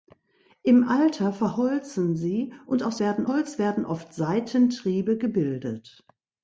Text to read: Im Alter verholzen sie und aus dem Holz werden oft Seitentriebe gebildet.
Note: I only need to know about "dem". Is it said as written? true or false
false